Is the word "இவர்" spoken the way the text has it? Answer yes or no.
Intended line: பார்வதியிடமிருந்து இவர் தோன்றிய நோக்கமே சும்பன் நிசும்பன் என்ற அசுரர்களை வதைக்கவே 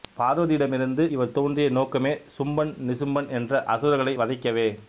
yes